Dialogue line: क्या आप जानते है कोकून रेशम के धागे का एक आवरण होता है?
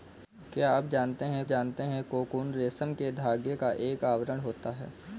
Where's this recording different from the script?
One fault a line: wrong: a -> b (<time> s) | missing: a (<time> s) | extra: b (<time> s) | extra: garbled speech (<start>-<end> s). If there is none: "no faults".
extra: जानते है (1.4 s)